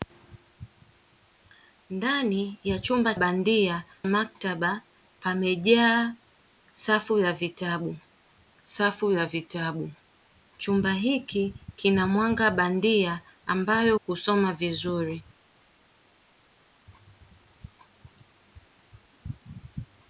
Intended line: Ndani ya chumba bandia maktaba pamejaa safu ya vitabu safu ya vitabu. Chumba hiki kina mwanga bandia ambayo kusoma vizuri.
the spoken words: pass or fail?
pass